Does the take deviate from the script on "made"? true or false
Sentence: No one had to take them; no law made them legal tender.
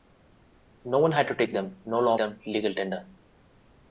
true